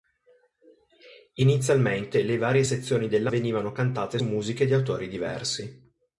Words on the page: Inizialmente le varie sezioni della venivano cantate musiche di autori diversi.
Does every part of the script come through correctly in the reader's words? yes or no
yes